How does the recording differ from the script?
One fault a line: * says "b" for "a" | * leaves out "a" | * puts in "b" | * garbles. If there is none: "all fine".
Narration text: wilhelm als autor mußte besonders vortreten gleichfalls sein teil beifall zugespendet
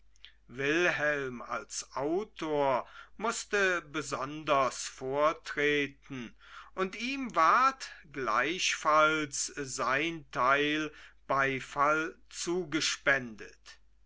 * puts in "und ihm ward"